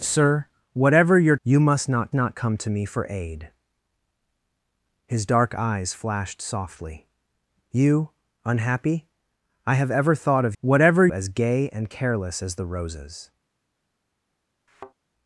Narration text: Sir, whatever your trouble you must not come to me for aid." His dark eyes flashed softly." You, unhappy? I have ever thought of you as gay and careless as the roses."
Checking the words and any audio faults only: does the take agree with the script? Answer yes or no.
no